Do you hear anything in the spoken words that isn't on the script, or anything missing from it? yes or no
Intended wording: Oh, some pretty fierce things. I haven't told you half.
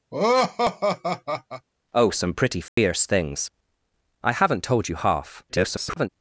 yes